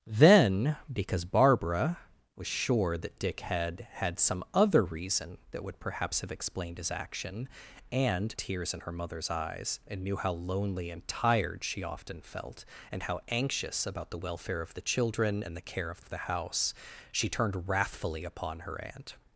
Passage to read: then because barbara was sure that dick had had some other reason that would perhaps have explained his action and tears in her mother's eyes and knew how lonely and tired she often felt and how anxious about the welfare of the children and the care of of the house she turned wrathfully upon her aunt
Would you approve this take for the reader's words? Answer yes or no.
yes